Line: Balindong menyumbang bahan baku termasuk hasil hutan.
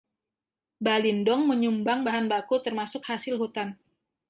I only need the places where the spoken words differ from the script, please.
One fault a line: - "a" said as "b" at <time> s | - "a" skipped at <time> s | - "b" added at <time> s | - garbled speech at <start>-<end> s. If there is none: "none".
none